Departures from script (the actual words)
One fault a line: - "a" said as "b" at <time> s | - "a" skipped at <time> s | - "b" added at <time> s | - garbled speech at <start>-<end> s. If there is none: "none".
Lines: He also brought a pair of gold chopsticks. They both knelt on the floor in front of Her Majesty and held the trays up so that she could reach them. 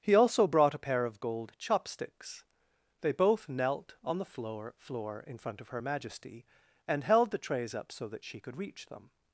- "floor" added at 4.8 s